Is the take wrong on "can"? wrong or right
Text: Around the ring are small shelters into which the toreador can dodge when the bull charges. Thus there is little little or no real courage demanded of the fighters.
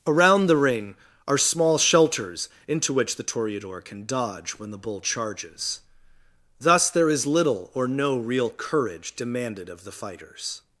right